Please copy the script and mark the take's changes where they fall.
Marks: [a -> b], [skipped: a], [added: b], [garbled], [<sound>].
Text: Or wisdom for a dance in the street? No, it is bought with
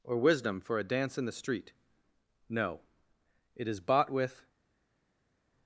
Or wisdom for a dance in the street? No, it is bought with